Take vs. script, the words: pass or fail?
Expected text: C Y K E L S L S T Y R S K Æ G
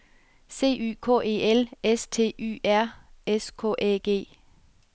fail